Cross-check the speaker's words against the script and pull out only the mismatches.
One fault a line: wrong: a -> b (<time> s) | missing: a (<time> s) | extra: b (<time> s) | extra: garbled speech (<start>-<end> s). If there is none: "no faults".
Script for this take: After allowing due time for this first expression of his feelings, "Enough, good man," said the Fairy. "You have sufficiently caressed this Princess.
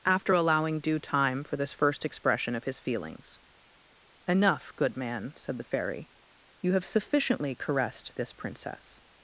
no faults